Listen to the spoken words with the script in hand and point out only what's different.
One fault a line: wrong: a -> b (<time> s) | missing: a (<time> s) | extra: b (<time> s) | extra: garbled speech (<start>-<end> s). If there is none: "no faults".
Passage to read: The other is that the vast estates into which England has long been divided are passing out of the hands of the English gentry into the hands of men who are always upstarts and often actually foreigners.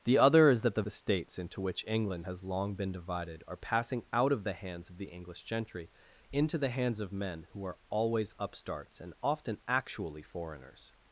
missing: vast (0.8 s)